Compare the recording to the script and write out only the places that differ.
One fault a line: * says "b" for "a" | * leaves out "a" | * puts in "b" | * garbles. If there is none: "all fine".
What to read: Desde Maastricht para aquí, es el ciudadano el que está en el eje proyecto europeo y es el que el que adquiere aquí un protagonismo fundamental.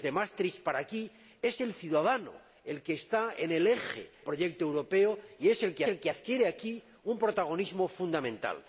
all fine